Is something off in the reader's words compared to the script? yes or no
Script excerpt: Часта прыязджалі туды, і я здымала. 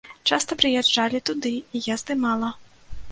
no